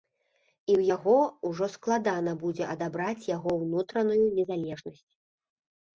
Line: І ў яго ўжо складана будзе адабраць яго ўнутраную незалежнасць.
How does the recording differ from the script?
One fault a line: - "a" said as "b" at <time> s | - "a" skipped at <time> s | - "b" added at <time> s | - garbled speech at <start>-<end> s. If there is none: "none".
none